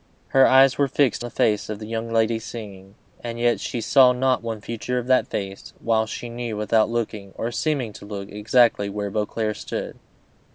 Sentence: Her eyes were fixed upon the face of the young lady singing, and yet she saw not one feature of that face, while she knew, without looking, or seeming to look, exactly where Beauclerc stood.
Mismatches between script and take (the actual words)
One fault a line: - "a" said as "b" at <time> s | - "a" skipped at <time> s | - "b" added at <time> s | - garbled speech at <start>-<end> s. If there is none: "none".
- "upon" skipped at 1.2 s